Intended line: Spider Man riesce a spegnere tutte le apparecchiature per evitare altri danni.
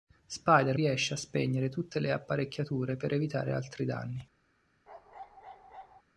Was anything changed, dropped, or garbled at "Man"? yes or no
yes